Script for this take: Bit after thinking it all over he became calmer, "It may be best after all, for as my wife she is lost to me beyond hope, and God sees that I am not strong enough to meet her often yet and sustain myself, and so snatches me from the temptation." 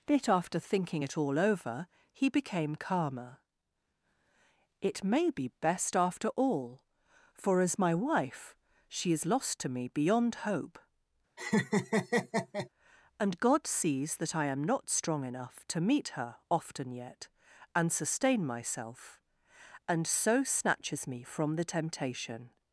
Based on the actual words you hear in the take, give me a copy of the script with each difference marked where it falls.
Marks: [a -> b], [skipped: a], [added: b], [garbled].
Bit after thinking it all over he became calmer, "It may be best after all, for as my wife she is lost to me beyond hope, and God sees that I am not strong enough to meet her often yet and sustain myself, and so snatches me from the temptation."